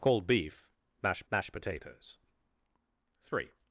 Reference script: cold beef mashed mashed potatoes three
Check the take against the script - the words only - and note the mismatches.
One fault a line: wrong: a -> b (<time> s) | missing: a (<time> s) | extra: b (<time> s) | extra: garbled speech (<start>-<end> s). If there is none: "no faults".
no faults